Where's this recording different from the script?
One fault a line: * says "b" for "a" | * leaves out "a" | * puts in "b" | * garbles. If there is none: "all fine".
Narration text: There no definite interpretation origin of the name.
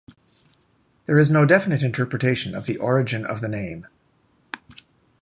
* puts in "is"
* puts in "of the"